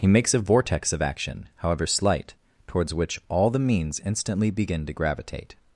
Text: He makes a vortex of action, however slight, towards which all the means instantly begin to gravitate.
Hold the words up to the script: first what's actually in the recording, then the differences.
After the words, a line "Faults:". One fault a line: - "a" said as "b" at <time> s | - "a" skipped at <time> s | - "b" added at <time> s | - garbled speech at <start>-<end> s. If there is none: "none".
He makes a vortex of action, however slight, towards which all the means instantly begin to gravitate.
Faults:
none